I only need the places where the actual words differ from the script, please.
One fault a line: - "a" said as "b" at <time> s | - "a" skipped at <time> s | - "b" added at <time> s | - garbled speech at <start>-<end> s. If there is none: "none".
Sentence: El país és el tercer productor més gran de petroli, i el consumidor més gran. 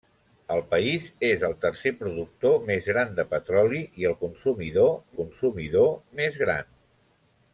- "consumidor" added at 5.2 s